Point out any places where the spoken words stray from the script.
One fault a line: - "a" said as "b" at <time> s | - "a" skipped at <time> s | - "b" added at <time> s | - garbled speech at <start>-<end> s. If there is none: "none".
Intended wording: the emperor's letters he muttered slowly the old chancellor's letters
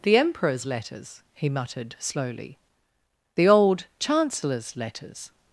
none